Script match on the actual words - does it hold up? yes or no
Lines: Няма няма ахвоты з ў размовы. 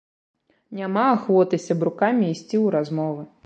no